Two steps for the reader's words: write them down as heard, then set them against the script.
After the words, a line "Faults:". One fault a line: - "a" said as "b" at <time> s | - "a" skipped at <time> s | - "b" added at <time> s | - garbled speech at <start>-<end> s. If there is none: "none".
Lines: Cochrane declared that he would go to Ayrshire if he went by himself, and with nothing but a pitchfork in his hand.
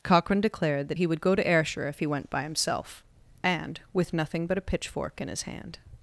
Cochrane declared that he would go to Ayrshire if he went by himself, and with nothing but a pitchfork in his hand.
Faults:
none